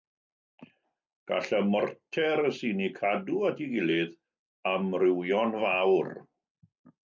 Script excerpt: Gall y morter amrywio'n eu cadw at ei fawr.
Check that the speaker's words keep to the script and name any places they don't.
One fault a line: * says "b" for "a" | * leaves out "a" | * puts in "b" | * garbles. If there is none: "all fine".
* says "sy'n" for "amrywio'n"
* puts in "gilydd amrywio'n"